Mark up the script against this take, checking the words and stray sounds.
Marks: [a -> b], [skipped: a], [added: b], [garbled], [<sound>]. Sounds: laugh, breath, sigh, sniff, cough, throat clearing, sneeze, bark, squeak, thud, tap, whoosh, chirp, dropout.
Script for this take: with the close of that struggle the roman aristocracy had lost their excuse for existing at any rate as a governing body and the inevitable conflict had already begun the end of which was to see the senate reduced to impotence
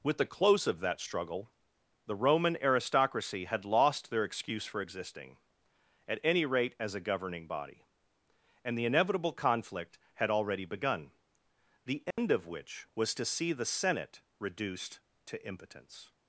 with the close of that struggle the roman aristocracy had lost their excuse for existing at any rate as a governing body and the inevitable conflict had already begun the end [dropout] of which was to see the senate reduced to impotence